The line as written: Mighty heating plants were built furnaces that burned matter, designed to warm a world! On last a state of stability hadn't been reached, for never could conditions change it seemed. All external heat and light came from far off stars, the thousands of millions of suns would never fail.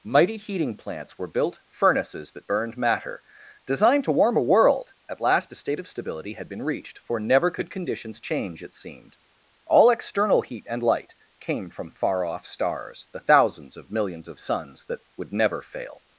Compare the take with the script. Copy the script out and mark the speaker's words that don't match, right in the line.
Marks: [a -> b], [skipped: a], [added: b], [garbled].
Mighty heating plants were built furnaces that burned matter, designed to warm a world! [On -> At] last a state of stability [hadn't -> had] been reached, for never could conditions change it seemed. All external heat and light came from far off stars, the thousands of millions of suns [added: that] would never fail.